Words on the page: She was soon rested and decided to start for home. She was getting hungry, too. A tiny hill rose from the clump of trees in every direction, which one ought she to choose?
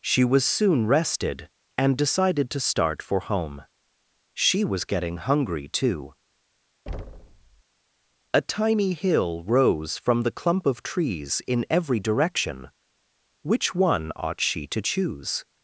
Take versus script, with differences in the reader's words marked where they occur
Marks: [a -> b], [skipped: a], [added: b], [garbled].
She was soon rested and decided to start for home. She was getting hungry, too. A tiny hill rose from the clump of trees in every direction, which one ought she to choose?